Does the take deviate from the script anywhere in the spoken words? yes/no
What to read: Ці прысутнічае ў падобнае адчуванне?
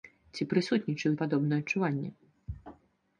no